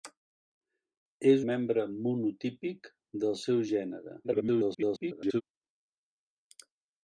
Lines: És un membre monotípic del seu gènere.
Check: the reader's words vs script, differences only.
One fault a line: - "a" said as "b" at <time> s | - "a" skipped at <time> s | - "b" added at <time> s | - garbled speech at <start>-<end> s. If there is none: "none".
- "un" skipped at 1.4 s
- garbled speech at 4.2-5.4 s